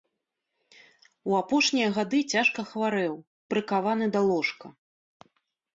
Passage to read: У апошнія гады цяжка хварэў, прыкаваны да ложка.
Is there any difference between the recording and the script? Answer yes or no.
no